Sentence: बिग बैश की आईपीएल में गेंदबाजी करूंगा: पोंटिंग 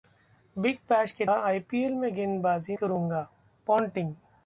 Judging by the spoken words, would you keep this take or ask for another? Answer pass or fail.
pass